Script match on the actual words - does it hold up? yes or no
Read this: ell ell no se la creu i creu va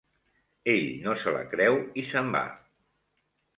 no